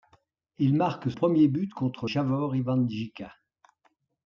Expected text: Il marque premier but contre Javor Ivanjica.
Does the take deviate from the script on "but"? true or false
false